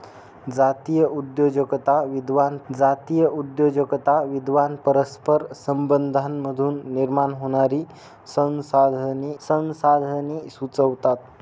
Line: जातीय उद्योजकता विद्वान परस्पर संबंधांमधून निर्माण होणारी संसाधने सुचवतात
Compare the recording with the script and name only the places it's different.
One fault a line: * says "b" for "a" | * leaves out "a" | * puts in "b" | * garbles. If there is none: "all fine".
* puts in "जातीय उद्योजकता विद्वान"
* puts in "संसाधने"